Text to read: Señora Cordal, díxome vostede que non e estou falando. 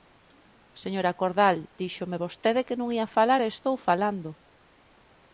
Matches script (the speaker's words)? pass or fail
fail